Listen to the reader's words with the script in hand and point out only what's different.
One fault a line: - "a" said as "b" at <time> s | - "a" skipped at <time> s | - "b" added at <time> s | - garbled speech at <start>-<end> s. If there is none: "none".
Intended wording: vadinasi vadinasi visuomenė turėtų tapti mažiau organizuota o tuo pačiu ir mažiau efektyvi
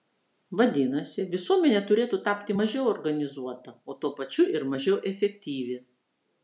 - "vadinasi" skipped at 1.2 s